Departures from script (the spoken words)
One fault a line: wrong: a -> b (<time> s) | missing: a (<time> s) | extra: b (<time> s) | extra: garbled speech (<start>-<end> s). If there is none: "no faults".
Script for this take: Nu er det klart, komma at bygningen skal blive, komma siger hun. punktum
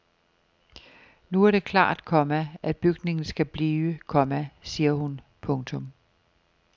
no faults